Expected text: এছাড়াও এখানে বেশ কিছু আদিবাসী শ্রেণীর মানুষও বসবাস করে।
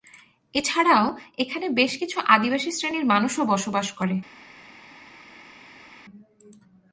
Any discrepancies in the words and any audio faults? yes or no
no